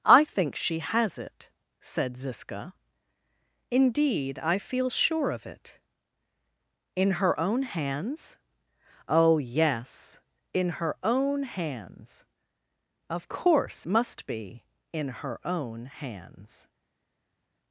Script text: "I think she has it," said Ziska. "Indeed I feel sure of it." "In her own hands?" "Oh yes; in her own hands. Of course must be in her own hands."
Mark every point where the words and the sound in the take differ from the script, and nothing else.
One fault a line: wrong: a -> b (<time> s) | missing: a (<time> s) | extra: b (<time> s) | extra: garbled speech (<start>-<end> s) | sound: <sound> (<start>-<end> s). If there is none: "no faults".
no faults